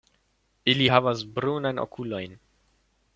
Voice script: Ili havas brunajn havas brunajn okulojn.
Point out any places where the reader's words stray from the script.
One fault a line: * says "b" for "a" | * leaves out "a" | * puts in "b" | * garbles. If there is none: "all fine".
* leaves out "havas brunajn"